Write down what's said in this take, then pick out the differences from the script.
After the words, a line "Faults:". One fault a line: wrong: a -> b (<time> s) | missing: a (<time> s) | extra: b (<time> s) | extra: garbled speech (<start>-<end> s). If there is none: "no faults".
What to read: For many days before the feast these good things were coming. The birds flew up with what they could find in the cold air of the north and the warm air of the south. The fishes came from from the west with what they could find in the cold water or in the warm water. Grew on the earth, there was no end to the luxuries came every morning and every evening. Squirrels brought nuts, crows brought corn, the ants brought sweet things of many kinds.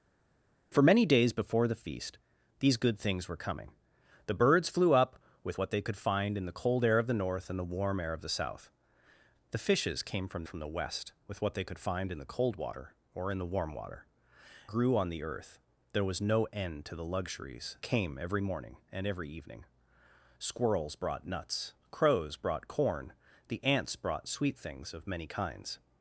For many days before the feast these good things were coming. The birds flew up with what they could find in the cold air of the north and the warm air of the south. The fishes came from from the west with what they could find in the cold water or in the warm water. Grew on the earth, there was no end to the luxuries came every morning and every evening. Squirrels brought nuts, crows brought corn, the ants brought sweet things of many kinds.
Faults:
no faults